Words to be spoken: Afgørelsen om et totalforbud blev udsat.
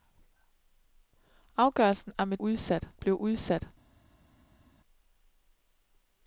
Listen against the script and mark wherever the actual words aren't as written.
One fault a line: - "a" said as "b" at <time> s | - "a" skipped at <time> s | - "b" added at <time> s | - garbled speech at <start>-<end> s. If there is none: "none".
- "totalforbud" said as "udsat" at 2.4 s